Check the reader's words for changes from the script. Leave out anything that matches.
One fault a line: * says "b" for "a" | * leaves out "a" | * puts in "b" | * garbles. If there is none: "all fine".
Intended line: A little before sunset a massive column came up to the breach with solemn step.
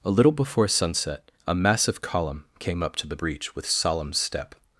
all fine